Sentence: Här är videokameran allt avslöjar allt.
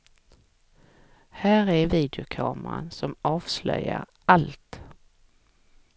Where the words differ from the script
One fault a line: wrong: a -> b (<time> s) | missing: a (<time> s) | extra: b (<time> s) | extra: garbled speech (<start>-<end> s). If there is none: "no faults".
wrong: allt -> som (2.9 s)